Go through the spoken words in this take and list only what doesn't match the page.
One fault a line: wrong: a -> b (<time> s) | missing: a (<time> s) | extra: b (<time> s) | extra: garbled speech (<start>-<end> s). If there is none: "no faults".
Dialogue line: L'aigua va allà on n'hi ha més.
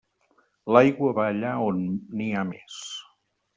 no faults